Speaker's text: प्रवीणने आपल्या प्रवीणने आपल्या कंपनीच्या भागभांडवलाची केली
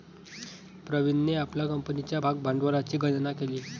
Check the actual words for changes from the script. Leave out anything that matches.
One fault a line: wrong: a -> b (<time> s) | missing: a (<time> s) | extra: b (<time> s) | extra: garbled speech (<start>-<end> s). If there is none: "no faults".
missing: प्रवीणने आपल्या (1.6 s)
extra: गणना (3.0 s)